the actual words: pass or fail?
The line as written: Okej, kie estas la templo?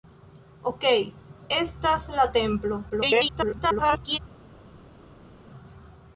fail